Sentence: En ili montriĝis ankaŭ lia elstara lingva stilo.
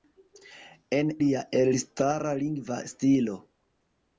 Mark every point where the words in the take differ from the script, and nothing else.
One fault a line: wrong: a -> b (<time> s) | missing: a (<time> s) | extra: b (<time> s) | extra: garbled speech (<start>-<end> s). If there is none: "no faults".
missing: ili montriĝis ankaŭ (1.1 s)